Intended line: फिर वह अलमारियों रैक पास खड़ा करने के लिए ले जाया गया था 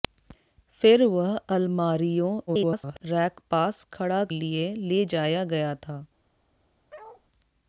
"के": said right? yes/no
no